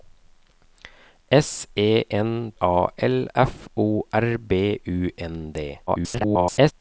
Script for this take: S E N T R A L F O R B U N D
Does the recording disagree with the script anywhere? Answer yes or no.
yes